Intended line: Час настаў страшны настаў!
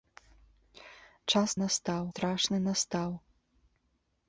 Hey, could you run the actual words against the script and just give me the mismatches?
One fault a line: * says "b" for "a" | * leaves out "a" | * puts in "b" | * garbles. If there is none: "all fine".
all fine